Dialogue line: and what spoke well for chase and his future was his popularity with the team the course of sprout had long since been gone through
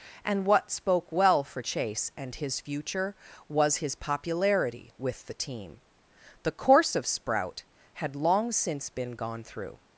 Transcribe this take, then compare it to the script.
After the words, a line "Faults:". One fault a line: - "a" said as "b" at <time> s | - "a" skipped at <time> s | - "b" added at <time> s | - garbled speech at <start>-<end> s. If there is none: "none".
and what spoke well for chase and his future was his popularity with the team the course of sprout had long since been gone through
Faults:
none